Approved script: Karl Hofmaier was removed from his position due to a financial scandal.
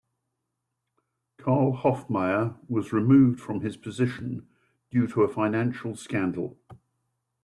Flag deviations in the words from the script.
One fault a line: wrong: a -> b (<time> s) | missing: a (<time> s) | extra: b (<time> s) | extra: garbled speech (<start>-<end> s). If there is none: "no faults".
no faults